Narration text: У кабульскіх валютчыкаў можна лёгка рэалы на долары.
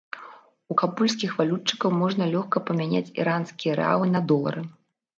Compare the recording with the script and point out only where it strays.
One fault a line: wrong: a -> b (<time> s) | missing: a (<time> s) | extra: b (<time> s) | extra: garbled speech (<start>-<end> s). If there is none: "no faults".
extra: памяняць іранскія (2.7 s)